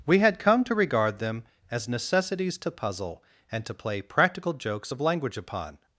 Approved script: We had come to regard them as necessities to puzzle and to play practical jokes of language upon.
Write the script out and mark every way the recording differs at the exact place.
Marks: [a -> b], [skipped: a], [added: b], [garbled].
We had come to regard them as necessities to puzzle and to play practical jokes of language upon.